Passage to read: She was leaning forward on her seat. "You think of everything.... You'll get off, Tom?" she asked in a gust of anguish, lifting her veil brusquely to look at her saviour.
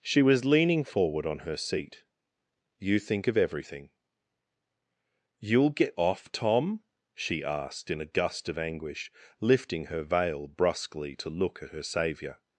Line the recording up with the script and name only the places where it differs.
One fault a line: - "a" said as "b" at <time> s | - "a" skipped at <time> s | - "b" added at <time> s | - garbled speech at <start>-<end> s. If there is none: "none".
none